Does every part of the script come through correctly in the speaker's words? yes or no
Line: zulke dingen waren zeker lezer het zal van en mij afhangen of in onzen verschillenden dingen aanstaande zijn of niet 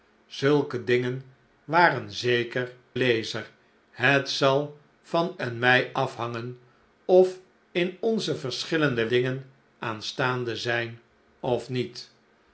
yes